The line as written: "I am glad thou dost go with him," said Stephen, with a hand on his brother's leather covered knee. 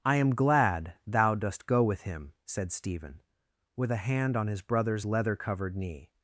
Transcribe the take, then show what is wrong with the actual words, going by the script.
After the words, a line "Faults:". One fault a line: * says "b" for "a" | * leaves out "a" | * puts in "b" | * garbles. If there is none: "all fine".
"I am glad thou dost go with him," said Stephen, with a hand on his brother's leather covered knee.
Faults:
all fine